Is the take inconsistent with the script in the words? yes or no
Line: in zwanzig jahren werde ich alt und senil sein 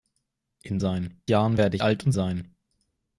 yes